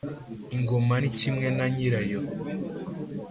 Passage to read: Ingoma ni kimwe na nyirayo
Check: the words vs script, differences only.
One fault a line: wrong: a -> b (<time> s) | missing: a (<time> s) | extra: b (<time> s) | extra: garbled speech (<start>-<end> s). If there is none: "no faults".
no faults